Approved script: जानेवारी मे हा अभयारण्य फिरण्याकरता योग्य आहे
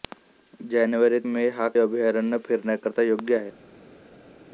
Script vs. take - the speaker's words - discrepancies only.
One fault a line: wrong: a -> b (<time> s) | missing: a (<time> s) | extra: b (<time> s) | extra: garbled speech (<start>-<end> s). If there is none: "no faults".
no faults